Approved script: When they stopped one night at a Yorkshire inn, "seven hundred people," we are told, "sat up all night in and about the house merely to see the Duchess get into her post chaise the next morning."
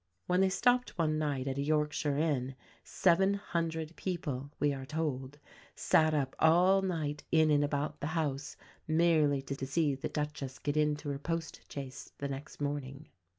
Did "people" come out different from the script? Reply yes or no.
no